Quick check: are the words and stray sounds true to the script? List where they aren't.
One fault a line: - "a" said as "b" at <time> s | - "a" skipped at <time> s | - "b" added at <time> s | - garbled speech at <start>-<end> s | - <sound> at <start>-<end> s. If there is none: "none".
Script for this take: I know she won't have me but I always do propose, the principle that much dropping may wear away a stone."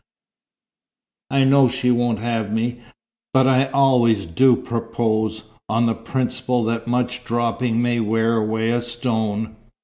- "on" added at 5.7 s